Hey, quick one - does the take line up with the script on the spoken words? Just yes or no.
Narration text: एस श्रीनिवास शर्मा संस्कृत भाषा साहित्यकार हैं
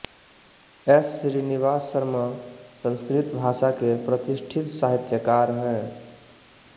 no